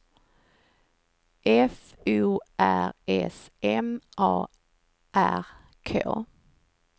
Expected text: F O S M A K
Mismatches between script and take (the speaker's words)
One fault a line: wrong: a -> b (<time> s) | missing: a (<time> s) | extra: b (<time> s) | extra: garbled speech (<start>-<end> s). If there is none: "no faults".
extra: R (2.6 s)
extra: R (5.1 s)